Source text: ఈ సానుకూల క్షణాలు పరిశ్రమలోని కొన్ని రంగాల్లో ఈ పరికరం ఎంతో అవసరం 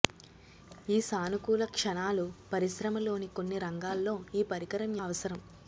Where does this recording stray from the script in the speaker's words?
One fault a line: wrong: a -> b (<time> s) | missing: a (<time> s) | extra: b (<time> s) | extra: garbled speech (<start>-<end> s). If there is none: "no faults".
missing: ఎంతో (4.9 s)